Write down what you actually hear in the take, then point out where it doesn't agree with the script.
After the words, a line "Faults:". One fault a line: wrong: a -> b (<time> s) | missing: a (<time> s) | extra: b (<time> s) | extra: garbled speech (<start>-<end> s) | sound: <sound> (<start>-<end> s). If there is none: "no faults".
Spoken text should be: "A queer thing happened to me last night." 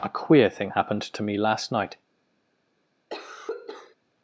"A queer thing happened to me last night."
Faults:
sound: cough (3.1-4.0 s)